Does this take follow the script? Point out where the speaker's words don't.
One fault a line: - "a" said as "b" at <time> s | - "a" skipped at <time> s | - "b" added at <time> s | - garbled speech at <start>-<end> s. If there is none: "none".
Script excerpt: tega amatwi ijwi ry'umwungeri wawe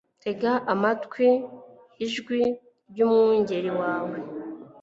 none